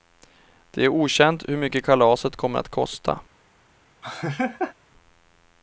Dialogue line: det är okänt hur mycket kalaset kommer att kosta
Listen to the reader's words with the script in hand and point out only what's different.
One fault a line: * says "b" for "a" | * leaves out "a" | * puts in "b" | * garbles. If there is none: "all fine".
all fine